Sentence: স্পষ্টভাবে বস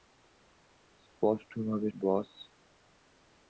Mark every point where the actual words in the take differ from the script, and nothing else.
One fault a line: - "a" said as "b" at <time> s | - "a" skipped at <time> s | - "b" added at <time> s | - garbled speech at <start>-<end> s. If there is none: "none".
none